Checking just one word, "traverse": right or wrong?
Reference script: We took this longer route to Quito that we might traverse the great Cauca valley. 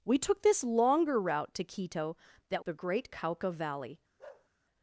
wrong